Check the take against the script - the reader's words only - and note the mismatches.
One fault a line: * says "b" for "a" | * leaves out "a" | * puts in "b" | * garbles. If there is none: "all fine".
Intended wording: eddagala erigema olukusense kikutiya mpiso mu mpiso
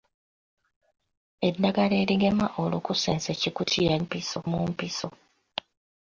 all fine